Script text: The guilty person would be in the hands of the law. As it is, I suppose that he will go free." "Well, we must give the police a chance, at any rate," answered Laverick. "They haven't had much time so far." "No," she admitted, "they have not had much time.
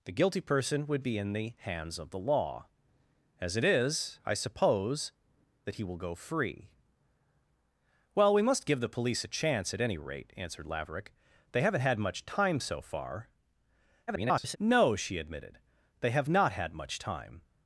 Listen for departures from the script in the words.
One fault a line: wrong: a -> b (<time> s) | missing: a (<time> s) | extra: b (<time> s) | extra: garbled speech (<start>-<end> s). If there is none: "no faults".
extra: garbled speech (14.1-14.6 s)